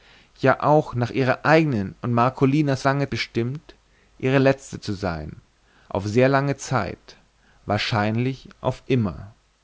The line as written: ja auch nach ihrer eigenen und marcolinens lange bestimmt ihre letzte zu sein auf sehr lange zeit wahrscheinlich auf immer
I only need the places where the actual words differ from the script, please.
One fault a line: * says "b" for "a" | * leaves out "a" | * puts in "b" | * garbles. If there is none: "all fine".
all fine